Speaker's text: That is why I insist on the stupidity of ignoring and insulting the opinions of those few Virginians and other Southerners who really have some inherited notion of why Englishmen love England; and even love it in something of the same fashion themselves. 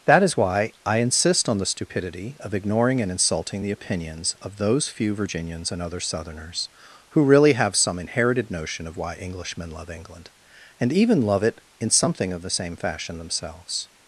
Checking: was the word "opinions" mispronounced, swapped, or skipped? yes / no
no